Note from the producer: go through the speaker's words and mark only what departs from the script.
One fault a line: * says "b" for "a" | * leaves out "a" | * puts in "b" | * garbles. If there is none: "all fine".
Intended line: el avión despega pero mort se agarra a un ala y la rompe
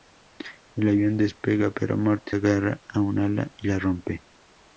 * leaves out "se"